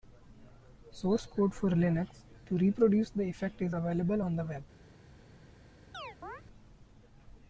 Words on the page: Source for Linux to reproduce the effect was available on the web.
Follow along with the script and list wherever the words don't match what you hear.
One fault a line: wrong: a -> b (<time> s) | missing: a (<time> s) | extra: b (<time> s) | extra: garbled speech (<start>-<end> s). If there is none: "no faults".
extra: code (1.3 s)
wrong: was -> is (3.6 s)